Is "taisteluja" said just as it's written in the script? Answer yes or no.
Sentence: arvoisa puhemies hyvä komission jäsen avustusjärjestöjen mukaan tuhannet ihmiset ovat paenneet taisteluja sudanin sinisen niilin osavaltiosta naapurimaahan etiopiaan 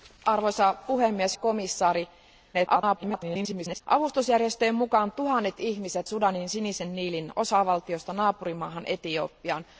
no